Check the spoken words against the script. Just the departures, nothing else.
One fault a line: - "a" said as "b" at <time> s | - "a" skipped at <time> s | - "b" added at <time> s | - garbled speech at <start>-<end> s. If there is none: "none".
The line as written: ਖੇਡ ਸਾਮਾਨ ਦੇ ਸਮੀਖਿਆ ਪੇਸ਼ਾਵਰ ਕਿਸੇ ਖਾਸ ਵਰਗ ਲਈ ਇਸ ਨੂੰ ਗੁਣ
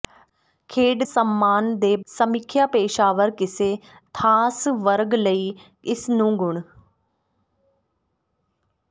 none